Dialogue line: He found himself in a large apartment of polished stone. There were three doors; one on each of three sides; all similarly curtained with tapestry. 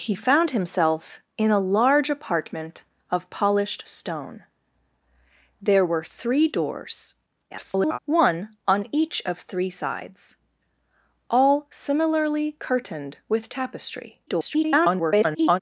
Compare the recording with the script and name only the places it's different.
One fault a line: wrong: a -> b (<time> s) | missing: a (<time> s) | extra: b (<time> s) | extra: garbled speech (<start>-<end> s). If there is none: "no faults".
extra: garbled speech (7.5-8.0 s)
extra: garbled speech (14.3-15.6 s)